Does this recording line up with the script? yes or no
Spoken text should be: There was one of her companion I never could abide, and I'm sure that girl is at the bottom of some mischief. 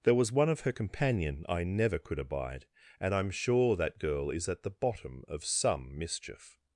yes